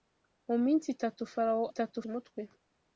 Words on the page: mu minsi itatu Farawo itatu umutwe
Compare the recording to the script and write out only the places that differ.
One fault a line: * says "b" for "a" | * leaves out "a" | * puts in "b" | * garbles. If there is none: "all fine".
all fine